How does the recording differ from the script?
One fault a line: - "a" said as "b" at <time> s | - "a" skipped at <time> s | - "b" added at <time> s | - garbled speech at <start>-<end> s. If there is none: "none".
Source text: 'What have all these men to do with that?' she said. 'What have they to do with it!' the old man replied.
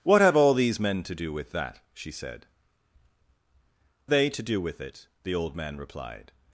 - "What have" skipped at 2.5 s